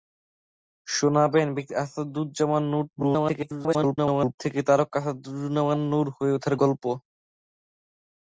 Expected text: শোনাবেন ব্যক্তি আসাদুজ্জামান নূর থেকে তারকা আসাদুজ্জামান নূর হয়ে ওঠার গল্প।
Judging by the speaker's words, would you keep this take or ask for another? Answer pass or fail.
fail